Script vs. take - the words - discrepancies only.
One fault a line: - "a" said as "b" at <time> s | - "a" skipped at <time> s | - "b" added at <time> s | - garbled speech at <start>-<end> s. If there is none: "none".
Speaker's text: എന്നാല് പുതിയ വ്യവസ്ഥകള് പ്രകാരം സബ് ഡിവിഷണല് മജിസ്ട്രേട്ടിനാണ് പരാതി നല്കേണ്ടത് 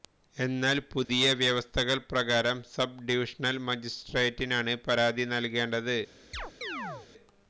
none